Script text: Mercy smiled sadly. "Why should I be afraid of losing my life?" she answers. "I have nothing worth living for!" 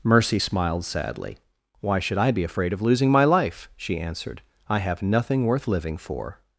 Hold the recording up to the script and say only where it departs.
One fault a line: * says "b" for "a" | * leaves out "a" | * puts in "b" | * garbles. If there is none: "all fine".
* says "answered" for "answers"